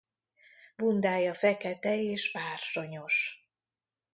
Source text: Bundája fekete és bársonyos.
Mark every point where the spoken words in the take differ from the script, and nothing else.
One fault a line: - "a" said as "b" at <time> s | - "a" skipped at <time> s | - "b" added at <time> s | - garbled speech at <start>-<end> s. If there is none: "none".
none